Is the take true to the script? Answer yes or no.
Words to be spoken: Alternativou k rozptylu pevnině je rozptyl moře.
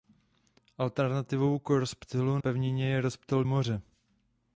yes